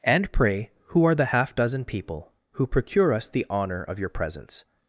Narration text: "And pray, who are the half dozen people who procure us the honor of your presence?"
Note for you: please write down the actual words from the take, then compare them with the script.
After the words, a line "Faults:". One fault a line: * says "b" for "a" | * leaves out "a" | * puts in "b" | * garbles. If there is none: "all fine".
"And pray, who are the half dozen people who procure us the honor of your presence?"
Faults:
all fine